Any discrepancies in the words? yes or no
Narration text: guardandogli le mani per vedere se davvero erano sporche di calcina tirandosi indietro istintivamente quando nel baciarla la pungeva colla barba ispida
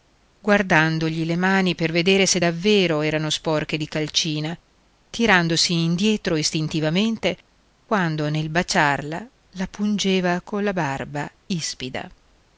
no